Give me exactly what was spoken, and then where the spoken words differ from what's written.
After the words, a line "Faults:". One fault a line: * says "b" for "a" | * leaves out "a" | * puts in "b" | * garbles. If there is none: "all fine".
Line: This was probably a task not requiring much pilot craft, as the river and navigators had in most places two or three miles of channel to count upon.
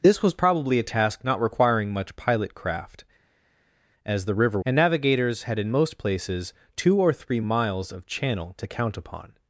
This was probably a task not requiring much pilot craft, as the river and navigators had in most places two or three miles of channel to count upon.
Faults:
all fine